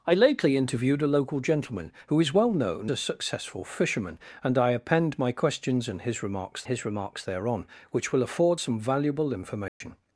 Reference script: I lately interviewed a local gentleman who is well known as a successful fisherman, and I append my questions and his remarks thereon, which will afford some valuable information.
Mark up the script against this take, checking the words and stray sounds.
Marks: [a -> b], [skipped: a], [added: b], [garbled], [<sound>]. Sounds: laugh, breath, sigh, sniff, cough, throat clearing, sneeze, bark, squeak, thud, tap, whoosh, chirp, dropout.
I lately interviewed a local gentleman who is well known [skipped: as] a successful fisherman, and I append my questions and his remarks [added: his remarks] thereon, which will afford some valuable information. [dropout]